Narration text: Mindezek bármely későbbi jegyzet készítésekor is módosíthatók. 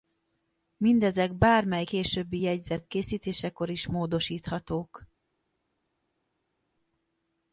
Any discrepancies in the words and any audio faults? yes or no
no